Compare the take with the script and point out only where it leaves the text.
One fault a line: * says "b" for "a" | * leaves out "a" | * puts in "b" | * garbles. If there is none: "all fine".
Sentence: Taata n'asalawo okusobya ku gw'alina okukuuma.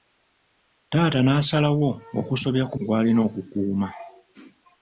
all fine